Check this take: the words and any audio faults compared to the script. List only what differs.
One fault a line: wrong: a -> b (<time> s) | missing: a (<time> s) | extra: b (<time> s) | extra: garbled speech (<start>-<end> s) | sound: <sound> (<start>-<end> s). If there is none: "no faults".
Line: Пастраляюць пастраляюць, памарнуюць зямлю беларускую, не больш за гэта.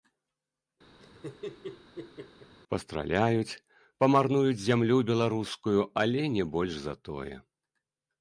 sound: laugh (1.0-2.6 s)
missing: пастраляюць (3.6 s)
extra: але (6.0 s)
wrong: гэта -> тое (7.1 s)